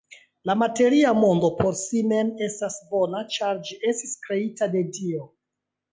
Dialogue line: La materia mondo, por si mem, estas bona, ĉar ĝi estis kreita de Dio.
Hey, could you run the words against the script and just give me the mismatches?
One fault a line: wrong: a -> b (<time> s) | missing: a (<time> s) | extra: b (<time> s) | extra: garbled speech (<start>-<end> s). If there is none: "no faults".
no faults